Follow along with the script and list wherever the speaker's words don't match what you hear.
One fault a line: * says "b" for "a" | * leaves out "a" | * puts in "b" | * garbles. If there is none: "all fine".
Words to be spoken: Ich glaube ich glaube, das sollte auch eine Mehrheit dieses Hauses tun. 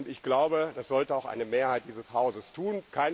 * leaves out "ich glaube"